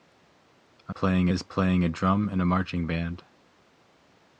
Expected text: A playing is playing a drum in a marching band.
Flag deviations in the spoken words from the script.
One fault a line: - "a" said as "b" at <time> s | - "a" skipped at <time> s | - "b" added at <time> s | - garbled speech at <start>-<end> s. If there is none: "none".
none